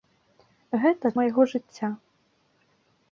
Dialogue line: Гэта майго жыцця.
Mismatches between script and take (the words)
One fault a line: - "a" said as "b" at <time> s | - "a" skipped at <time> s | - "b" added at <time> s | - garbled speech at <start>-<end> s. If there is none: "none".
none